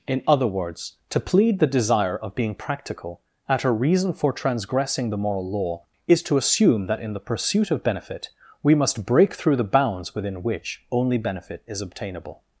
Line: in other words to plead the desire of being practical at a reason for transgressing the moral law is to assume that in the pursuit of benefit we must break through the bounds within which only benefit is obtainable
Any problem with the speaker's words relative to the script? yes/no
no